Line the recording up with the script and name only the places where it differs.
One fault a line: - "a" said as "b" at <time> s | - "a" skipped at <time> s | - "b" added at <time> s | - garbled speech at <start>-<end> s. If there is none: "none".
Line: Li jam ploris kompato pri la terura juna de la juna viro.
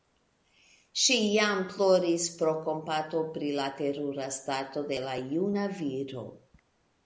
- "Li" said as "Ŝi" at 1.0 s
- "pro" added at 2.4 s
- "juna" said as "stato" at 4.4 s